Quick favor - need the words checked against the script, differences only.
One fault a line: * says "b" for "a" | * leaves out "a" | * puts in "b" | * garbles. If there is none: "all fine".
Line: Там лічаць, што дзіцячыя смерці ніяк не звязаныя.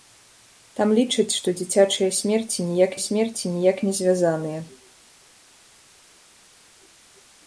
* puts in "смерці ніяк"